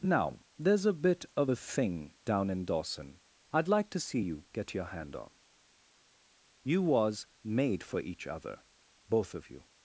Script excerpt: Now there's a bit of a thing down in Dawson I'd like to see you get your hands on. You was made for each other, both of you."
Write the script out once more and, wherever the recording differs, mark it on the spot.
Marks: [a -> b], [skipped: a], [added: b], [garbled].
Now there's a bit of a thing down in Dawson I'd like to see you get your [hands -> hand] on. You was made for each other, both of you."